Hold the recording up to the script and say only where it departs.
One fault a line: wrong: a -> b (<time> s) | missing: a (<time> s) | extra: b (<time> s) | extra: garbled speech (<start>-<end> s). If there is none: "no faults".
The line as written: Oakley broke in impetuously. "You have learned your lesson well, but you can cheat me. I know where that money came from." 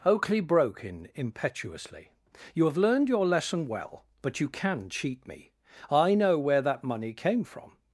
no faults